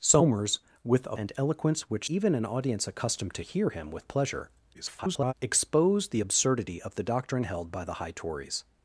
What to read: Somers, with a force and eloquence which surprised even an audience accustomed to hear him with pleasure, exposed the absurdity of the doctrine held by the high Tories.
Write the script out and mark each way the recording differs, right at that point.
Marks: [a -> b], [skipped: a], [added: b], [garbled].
Somers, with a [skipped: force] and eloquence which [skipped: surprised] even an audience accustomed to hear him with pleasure, [garbled] exposed the absurdity of the doctrine held by the high Tories.